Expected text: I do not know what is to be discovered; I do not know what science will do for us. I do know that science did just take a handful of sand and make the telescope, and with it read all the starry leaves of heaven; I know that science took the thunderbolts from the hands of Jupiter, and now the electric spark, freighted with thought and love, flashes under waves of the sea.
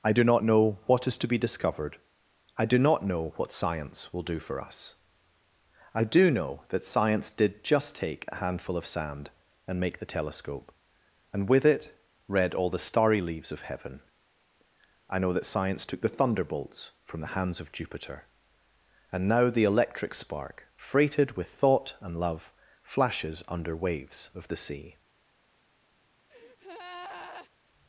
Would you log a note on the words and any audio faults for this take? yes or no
yes